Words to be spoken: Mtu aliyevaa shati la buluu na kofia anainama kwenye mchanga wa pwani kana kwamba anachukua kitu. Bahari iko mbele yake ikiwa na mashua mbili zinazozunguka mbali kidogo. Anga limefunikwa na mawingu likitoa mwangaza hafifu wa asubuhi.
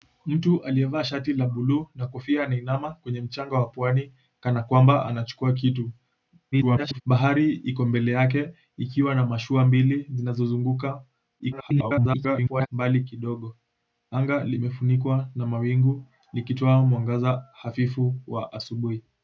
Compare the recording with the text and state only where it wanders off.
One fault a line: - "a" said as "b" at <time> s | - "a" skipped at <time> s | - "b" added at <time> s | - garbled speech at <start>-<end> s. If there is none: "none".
- garbled speech at 6.5-7.0 s
- garbled speech at 11.4-12.7 s